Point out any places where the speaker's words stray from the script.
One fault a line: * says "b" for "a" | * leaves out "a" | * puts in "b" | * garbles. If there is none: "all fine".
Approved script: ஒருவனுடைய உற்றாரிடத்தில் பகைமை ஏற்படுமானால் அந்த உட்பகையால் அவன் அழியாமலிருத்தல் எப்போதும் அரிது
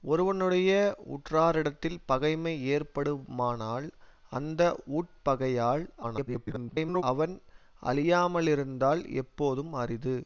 * garbles